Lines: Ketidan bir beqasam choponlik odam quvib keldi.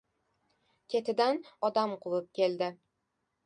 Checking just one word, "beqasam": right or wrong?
wrong